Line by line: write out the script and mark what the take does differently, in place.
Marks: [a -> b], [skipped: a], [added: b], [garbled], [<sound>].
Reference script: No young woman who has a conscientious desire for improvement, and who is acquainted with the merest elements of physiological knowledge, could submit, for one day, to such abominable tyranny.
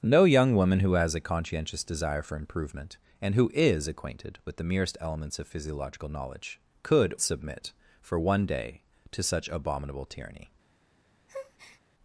No young woman who has a conscientious desire for improvement, and who is acquainted with the merest elements of physiological knowledge, could submit, for one day, to such abominable tyranny. [breath]